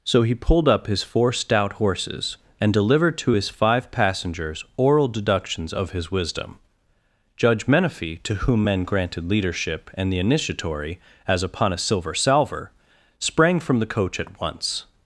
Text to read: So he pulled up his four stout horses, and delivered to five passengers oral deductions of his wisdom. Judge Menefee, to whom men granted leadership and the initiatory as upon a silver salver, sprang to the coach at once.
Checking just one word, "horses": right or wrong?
right